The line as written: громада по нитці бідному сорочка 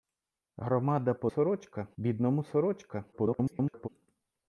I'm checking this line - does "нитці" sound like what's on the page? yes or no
no